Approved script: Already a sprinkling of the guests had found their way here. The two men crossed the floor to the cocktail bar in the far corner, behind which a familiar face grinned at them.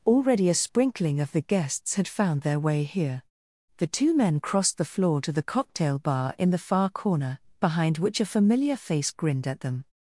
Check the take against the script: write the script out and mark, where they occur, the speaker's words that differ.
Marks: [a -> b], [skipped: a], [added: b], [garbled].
Already a sprinkling of the guests had found their way here. The two men crossed the floor to the cocktail bar in the far corner, behind which a familiar face grinned at them.